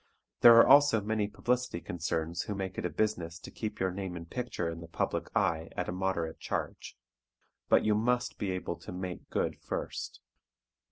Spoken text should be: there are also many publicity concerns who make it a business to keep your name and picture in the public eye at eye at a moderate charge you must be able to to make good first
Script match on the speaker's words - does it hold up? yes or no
no